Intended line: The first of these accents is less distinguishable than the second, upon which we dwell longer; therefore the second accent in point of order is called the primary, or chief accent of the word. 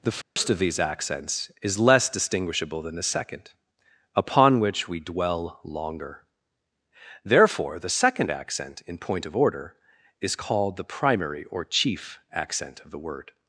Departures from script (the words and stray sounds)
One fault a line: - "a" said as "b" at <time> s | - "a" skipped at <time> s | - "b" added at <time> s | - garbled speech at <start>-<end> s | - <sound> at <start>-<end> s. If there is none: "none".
- dropout at 0.2-0.4 s